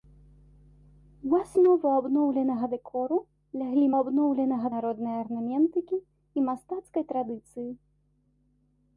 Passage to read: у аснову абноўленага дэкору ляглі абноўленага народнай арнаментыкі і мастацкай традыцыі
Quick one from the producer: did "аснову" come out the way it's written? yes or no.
yes